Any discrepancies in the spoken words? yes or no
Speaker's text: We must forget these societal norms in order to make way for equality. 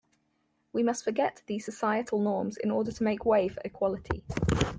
no